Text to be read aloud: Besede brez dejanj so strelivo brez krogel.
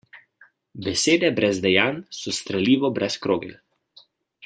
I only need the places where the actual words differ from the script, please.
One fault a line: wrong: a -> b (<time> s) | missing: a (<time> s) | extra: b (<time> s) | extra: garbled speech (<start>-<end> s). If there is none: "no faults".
no faults